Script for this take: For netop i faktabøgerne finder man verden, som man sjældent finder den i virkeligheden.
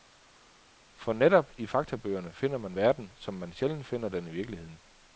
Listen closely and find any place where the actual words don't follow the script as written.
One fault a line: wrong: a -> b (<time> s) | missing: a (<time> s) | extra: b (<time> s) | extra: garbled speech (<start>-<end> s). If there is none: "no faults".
no faults